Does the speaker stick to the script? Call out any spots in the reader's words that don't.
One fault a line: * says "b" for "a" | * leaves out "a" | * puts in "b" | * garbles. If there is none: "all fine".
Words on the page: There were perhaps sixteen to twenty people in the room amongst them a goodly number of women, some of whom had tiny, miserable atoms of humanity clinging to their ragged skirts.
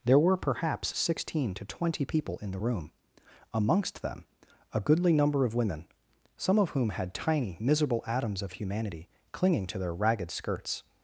all fine